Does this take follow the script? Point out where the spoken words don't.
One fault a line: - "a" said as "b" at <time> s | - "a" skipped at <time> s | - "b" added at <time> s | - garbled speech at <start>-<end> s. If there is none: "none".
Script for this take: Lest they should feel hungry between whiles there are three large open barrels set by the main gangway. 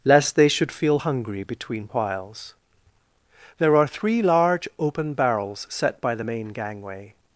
none